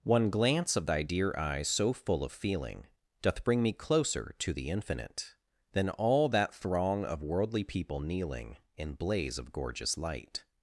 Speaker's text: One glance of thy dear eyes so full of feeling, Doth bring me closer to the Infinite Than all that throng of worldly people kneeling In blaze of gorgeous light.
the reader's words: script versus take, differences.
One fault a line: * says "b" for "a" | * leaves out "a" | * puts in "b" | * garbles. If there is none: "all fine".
all fine